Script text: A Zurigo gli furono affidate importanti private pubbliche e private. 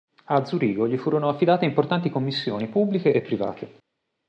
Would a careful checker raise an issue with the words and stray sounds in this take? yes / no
yes